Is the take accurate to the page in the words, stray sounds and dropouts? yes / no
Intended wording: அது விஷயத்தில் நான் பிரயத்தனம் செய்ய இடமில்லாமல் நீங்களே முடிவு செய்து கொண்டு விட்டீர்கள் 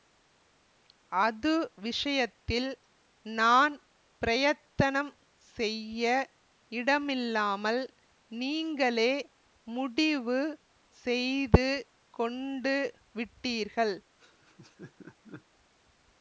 no